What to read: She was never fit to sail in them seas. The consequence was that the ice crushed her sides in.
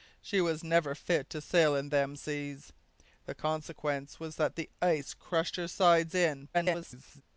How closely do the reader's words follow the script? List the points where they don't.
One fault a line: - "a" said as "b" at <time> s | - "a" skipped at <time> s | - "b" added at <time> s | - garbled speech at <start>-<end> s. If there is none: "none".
- garbled speech at 6.5-7.2 s